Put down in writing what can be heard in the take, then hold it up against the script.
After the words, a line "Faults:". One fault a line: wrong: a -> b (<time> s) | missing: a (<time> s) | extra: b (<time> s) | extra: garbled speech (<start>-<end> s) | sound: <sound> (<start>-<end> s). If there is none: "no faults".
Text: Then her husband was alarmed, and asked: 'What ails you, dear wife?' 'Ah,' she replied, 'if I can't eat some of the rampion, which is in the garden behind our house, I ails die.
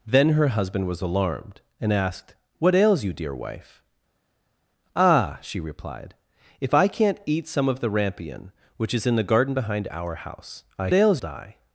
Then her husband was alarmed, and asked: 'What ails you, dear wife?' 'Ah,' she replied, 'if I can't eat some of the rampion, which is in the garden behind our house, I ails die.
Faults:
no faults